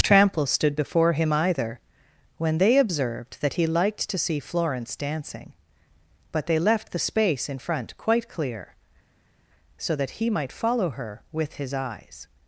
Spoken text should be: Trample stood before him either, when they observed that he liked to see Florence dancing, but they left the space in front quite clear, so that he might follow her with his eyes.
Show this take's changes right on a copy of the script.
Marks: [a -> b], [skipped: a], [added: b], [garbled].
Trample stood before him either, when they observed that he liked to see Florence dancing, but they left the space in front quite clear, so that he might follow her with his eyes.